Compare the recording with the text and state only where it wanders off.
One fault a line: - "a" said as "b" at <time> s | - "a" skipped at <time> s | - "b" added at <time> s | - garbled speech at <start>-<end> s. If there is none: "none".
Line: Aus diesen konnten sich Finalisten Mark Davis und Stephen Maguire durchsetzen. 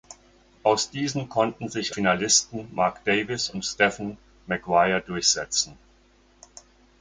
none